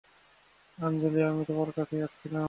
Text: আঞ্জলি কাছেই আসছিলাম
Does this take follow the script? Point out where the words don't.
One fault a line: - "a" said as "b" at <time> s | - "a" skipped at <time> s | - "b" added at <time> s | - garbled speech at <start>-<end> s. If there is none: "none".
- "আমি তোমার" added at 1.2 s